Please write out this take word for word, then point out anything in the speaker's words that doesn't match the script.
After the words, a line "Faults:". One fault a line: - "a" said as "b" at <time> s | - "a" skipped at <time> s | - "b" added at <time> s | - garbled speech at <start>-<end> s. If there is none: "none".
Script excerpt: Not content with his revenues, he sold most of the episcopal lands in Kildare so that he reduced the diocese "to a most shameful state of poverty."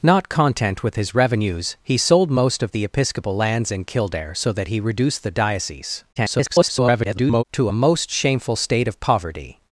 Not content with his revenues, he sold most of the episcopal lands in Kildare so that he reduced the diocese [garbled] "to a most shameful state of poverty."
Faults:
- garbled speech at 6.2-7.4 s